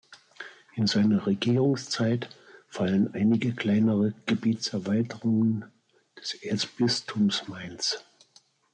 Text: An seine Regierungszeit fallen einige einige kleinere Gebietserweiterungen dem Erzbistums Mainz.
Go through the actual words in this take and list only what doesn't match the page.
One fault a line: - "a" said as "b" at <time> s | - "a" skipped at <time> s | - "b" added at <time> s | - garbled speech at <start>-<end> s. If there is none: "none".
- "An" said as "In" at 0.7 s
- "einige" skipped at 3.5 s
- "dem" said as "des" at 6.1 s